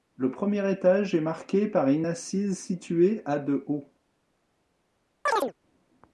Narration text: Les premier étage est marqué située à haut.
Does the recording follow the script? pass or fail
fail